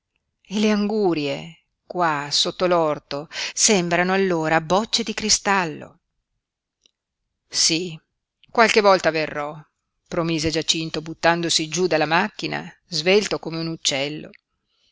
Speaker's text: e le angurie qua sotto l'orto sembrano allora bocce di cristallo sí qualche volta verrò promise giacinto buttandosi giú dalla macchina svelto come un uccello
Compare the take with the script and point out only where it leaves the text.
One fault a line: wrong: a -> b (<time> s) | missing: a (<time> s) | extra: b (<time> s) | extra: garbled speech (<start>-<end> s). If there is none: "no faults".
no faults